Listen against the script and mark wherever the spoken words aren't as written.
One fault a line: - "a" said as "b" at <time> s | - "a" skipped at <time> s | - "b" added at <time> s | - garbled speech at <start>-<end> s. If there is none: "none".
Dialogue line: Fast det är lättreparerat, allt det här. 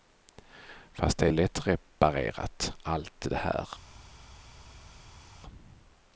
none